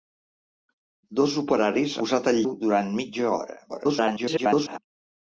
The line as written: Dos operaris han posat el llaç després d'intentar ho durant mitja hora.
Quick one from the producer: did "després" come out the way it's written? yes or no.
no